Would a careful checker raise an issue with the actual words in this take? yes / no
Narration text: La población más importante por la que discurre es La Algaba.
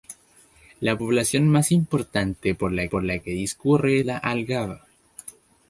yes